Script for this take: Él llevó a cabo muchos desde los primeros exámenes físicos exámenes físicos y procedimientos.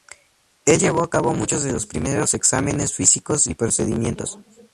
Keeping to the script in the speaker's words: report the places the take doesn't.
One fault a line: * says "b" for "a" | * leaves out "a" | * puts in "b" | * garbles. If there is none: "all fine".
* says "de" for "desde"
* leaves out "exámenes físicos"